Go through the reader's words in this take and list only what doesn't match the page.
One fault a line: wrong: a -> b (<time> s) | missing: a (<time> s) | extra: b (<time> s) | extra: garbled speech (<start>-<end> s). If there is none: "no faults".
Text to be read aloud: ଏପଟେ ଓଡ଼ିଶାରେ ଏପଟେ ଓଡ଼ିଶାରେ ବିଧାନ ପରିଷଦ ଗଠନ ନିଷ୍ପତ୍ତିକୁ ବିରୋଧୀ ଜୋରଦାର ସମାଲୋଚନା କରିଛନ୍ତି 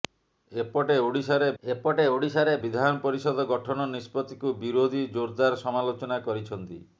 no faults